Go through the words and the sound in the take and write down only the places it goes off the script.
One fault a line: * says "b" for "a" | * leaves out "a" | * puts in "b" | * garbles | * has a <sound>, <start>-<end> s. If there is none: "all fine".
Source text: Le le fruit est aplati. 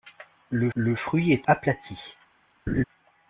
* has a laugh, 2.7-2.8 s